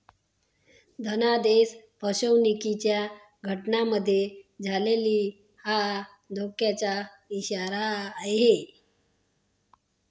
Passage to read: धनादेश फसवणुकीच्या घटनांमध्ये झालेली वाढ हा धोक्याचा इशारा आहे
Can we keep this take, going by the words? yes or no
no